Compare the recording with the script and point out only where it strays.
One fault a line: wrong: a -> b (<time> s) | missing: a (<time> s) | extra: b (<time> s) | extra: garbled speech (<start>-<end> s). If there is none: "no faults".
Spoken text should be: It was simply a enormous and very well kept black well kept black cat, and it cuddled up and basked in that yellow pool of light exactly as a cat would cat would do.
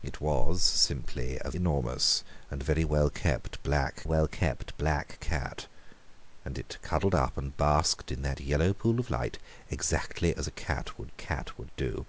no faults